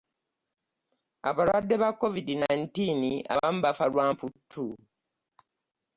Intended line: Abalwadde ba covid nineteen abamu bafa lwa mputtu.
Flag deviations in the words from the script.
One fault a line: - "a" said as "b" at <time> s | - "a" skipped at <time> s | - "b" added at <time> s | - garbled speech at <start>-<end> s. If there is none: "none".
none